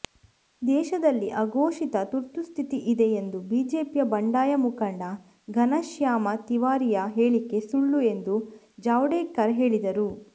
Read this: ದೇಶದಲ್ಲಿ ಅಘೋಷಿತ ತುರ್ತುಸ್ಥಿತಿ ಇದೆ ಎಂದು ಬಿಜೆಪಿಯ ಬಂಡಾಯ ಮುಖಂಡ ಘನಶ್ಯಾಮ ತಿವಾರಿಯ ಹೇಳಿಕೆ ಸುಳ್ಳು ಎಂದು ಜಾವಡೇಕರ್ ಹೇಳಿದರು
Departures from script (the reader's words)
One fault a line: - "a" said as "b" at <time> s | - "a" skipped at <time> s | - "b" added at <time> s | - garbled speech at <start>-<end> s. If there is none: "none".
none